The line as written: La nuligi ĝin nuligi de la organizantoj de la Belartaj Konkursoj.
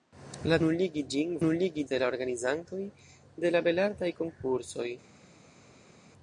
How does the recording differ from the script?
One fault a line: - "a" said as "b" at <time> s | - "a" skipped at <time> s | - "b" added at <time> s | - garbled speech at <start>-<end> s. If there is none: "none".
none